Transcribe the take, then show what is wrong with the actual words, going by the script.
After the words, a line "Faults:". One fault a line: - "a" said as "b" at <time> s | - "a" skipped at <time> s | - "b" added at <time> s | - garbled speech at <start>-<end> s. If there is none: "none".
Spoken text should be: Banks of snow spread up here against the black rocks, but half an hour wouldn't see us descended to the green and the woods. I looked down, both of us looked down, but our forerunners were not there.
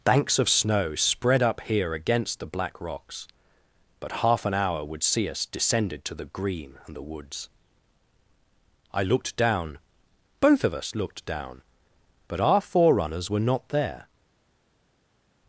Banks of snow spread up here against the black rocks, but half an hour would see us descended to the green and the woods. I looked down, both of us looked down, but our forerunners were not there.
Faults:
- "wouldn't" said as "would" at 4.8 s